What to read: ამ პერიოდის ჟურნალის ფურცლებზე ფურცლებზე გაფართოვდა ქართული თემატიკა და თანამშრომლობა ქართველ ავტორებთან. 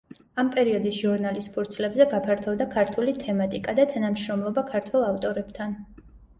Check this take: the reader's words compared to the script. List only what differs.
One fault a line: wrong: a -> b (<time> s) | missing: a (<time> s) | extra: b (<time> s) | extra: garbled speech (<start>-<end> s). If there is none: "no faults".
missing: ფურცლებზე (2.1 s)